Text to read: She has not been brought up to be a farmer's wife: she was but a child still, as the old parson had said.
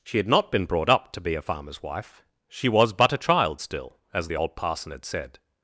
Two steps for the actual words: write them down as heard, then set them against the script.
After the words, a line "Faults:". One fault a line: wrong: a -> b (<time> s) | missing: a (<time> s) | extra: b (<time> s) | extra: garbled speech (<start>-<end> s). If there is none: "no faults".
She had not been brought up to be a farmer's wife: she was but a child still, as the old parson had said.
Faults:
wrong: has -> had (0.2 s)